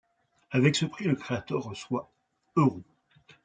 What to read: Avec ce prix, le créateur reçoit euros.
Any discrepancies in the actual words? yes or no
no